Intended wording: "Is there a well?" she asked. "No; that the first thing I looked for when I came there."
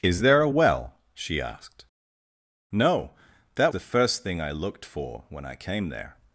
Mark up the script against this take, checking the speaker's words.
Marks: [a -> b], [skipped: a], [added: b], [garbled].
"Is there a well?" she asked. "No; that the first thing I looked for when I came there."